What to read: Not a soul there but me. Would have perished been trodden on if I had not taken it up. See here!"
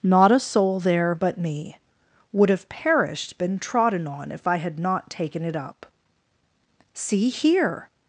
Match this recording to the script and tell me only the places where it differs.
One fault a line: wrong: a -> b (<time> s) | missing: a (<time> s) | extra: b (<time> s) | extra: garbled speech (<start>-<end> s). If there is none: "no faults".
no faults